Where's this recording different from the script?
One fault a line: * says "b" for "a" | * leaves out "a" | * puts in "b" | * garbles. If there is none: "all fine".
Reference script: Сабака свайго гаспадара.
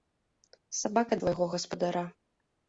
all fine